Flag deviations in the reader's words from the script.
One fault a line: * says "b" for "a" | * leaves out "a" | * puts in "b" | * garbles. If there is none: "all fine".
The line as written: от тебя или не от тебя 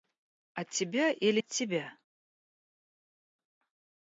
* leaves out "не"